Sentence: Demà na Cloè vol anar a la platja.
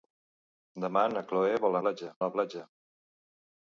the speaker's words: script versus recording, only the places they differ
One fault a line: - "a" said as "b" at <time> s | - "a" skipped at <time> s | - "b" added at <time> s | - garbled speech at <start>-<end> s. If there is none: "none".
- "anar" said as "platja" at 1.8 s